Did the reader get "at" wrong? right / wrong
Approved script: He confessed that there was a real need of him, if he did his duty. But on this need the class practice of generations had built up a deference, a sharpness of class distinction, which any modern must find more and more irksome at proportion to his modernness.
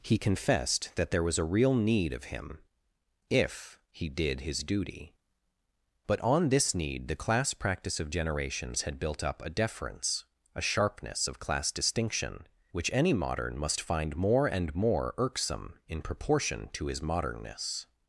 wrong